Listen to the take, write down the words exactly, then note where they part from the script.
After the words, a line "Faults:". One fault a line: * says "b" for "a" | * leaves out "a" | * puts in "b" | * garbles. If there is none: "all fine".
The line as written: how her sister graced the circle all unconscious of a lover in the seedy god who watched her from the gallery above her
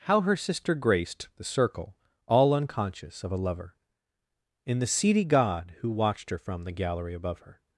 how her sister graced the circle all unconscious of a lover in the seedy god who watched her from the gallery above her
Faults:
all fine